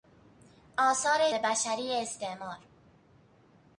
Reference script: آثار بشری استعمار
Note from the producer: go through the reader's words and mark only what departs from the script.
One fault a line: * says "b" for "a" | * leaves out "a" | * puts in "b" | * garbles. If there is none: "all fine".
all fine